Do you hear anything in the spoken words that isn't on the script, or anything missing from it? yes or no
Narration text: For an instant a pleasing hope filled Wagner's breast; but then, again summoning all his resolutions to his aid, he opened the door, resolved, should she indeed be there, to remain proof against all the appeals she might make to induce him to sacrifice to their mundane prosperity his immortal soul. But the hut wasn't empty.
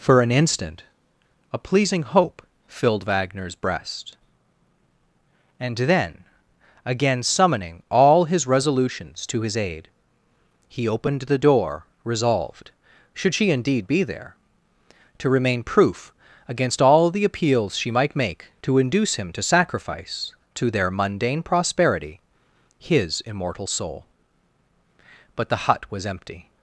yes